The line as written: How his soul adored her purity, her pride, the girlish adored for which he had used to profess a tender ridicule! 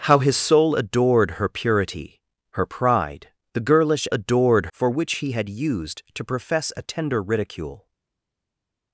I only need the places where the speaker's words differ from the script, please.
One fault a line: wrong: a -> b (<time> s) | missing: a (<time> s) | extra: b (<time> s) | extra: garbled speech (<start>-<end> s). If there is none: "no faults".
no faults